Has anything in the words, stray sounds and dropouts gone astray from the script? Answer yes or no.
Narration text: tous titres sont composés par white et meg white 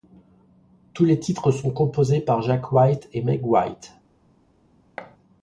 yes